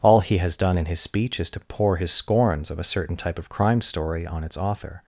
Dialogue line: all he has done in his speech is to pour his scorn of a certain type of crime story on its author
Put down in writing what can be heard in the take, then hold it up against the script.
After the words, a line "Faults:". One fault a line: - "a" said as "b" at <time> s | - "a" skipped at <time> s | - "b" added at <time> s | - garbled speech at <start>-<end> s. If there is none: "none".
all he has done in his speech is to pour his scorns of a certain type of crime story on its author
Faults:
- "scorn" said as "scorns" at 2.1 s